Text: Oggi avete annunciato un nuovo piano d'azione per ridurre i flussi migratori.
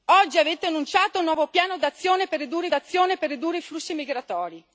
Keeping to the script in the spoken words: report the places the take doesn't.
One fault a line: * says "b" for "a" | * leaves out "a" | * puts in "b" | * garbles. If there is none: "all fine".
* puts in "d'azione per ridurre"